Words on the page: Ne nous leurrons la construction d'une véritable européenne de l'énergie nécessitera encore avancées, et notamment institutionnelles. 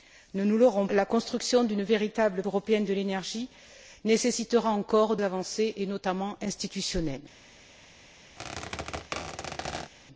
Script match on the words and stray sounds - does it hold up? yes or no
no